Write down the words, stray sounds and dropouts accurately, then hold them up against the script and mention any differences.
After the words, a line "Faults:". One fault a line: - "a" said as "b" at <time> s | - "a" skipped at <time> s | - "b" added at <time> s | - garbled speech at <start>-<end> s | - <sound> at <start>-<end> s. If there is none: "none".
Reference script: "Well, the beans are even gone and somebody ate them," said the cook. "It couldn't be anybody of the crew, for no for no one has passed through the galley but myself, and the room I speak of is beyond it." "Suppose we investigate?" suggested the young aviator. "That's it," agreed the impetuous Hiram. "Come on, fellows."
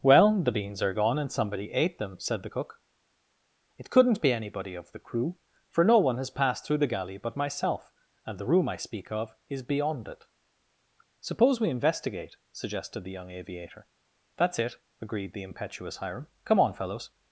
"Well, the beans are gone and somebody ate them," said the cook. "It couldn't be anybody of the crew, for no one has passed through the galley but myself, and the room I speak of is beyond it." "Suppose we investigate?" suggested the young aviator. "That's it," agreed the impetuous Hiram. "Come on, fellows."
Faults:
- "even" skipped at 0.9 s
- "for no" skipped at 6.0 s